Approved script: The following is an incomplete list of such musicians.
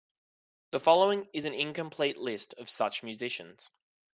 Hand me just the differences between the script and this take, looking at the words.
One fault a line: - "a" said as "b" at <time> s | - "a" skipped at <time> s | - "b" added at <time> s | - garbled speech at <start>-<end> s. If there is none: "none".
none